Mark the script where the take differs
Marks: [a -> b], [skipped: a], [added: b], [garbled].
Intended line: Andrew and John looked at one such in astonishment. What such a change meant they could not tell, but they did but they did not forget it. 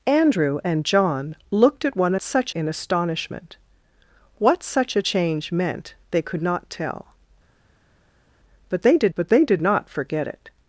Andrew and John looked at one such in astonishment. What such a change meant they could not tell, but they did but they did not forget it.